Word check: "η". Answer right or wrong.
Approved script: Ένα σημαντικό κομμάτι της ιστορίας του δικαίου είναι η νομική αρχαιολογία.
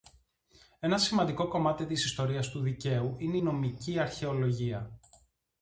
wrong